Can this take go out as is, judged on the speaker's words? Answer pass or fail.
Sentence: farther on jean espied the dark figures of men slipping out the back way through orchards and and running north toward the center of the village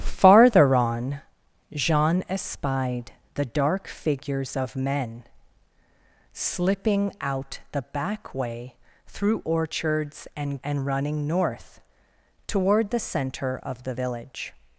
pass